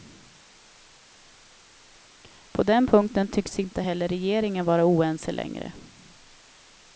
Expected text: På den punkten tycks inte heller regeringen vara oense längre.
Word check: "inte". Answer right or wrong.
right